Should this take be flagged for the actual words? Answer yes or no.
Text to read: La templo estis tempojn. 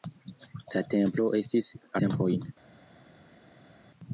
no